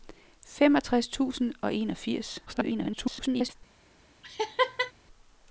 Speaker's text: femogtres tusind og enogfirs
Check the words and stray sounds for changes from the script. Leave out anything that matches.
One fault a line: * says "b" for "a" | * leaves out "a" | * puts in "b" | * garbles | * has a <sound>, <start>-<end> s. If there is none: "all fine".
* garbles
* has a laugh, 4.2-4.9 s